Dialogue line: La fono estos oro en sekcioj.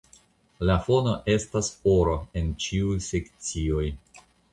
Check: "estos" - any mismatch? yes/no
yes